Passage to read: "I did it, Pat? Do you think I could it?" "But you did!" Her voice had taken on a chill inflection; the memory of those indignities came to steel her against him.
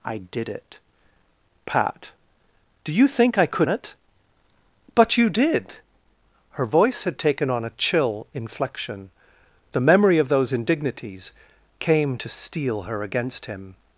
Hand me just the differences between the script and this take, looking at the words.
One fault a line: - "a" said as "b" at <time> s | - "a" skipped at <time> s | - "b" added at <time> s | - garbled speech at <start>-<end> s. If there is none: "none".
none